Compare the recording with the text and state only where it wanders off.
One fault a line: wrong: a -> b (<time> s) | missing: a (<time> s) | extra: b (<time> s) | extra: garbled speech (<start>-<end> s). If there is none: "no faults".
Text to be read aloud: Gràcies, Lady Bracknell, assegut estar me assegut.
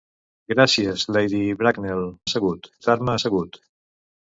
no faults